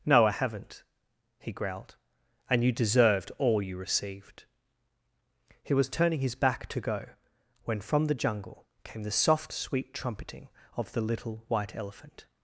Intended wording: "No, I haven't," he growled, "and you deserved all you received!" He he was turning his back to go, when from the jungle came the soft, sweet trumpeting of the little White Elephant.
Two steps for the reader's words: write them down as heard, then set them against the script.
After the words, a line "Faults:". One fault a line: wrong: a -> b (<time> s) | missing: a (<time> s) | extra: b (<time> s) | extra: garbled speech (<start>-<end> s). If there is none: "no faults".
"No, I haven't," he growled, "and you deserved all you received!" He was turning his back to go, when from the jungle came the soft, sweet trumpeting of the little White Elephant.
Faults:
missing: he (5.7 s)